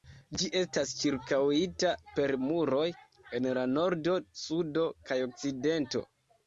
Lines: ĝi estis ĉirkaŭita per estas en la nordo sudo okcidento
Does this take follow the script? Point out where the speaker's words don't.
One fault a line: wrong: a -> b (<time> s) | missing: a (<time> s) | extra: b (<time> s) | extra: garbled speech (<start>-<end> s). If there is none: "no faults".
wrong: estis -> estas (0.6 s)
wrong: estas -> muroj (2.5 s)
extra: kaj (5.1 s)